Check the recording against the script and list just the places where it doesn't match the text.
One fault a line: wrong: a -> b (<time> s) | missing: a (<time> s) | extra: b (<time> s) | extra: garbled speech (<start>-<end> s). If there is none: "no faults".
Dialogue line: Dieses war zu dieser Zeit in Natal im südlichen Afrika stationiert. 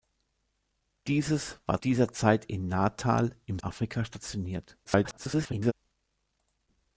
missing: zu (1.8 s)
missing: südlichen (3.6 s)
extra: garbled speech (4.8-5.7 s)